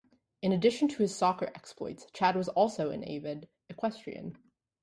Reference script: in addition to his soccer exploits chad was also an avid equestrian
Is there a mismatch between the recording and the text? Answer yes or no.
no